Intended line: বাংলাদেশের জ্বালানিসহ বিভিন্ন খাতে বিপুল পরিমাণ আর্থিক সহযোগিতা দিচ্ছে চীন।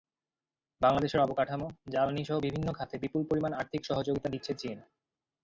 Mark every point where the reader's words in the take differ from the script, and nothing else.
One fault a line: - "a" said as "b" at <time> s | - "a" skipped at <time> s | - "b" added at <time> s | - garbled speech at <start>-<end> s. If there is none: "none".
- "অবকাঠামো" added at 1.2 s